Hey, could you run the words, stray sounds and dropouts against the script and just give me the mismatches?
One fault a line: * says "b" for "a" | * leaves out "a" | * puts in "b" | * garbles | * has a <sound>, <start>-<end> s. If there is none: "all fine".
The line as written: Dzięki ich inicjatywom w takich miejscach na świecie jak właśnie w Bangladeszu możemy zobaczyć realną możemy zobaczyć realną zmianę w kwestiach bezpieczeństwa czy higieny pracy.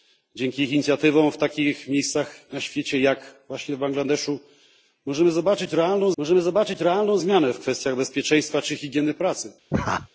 * has a laugh, 9.7-10.1 s